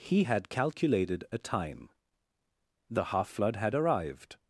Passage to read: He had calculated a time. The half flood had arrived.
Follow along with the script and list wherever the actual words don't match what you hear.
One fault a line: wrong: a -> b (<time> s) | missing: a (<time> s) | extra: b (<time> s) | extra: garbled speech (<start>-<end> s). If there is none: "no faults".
no faults